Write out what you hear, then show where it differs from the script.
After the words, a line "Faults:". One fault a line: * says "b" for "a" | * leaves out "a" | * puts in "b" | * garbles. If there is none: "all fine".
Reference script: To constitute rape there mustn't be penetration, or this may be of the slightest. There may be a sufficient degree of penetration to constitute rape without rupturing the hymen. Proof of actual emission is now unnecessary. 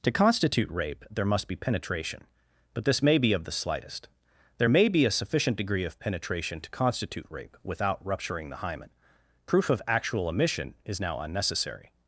To constitute rape there must be penetration, but this may be of the slightest. There may be a sufficient degree of penetration to constitute rape without rupturing the hymen. Proof of actual emission is now unnecessary.
Faults:
* says "must" for "mustn't"
* says "but" for "or"